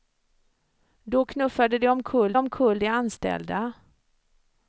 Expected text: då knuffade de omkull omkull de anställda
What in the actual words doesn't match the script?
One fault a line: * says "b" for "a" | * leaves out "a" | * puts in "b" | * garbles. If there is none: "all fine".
all fine